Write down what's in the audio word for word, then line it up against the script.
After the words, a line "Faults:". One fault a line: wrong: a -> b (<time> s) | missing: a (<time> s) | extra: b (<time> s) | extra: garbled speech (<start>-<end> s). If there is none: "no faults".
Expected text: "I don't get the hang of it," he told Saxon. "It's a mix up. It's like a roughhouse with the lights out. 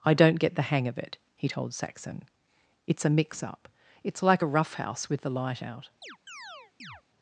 "I don't get the hang of it," he told Saxon. "It's a mix up. It's like a roughhouse with the light out.
Faults:
wrong: lights -> light (5.3 s)